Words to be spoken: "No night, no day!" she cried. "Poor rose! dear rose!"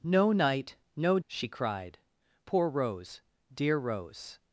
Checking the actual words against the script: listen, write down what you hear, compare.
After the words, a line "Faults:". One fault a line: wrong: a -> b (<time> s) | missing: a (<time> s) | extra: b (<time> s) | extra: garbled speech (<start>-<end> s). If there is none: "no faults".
"No night, no!" she cried. "Poor rose! dear rose!"
Faults:
missing: day (1.2 s)